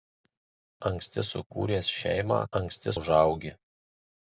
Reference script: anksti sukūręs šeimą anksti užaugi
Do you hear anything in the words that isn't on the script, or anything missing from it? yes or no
no